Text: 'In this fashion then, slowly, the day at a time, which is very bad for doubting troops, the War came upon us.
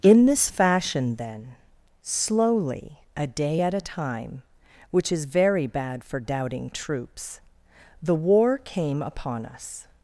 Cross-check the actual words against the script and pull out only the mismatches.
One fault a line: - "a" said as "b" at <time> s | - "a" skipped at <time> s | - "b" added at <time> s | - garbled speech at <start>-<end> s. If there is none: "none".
- "the" said as "a" at 3.1 s